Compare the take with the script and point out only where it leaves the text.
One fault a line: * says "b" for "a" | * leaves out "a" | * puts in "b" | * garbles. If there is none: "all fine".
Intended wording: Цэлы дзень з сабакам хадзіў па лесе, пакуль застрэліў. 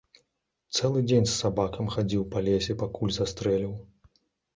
all fine